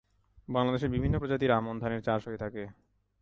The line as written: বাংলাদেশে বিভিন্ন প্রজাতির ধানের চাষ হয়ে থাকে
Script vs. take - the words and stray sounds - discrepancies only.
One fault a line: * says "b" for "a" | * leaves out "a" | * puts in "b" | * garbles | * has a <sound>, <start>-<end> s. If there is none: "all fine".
* puts in "আমন"